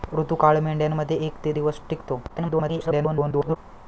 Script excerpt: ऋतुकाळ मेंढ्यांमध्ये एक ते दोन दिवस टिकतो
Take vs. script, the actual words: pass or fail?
fail